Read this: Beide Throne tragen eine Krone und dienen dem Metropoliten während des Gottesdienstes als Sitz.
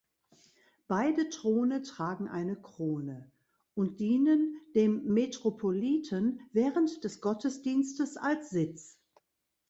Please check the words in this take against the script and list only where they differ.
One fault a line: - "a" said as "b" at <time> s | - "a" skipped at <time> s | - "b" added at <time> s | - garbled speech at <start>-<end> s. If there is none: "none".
none